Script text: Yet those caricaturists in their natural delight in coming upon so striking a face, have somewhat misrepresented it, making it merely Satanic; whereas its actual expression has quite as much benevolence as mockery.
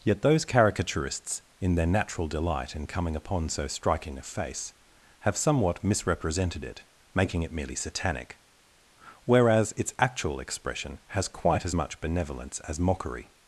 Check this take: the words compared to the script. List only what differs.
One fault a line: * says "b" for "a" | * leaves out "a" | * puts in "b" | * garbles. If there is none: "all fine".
all fine